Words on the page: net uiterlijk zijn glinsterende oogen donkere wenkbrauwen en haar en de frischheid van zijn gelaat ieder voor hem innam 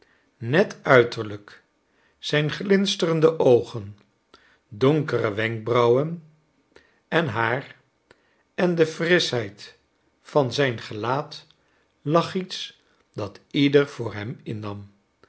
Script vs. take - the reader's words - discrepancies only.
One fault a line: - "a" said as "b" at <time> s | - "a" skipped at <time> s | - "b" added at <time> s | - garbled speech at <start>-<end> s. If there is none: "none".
- "lag iets dat" added at 12.0 s